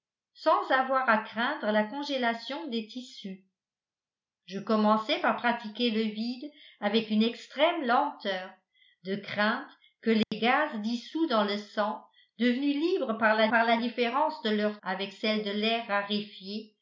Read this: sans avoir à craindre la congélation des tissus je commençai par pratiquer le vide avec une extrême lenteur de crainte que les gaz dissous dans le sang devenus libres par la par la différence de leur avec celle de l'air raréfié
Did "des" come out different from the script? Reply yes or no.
no